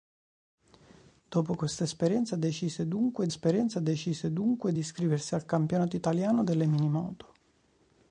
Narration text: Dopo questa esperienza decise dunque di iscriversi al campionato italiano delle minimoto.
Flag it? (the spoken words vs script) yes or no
yes